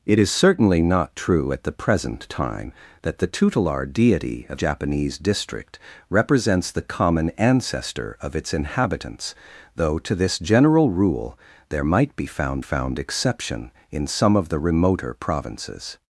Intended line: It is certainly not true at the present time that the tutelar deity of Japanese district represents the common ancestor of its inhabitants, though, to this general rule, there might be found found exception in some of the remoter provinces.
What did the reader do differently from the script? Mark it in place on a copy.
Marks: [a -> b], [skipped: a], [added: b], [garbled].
It is certainly not true at the present time that the tutelar deity of Japanese district represents the common ancestor of its inhabitants, though, to this general rule, there might be found found exception in some of the remoter provinces.